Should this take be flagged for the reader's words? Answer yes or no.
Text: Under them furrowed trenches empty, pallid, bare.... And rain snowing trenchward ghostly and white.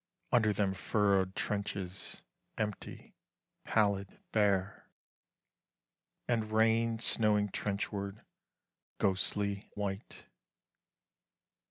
yes